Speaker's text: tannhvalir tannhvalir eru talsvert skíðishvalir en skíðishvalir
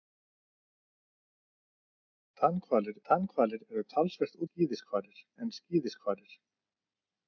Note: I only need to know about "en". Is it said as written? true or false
true